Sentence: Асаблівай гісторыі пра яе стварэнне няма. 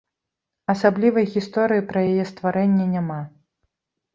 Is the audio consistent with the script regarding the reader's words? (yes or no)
yes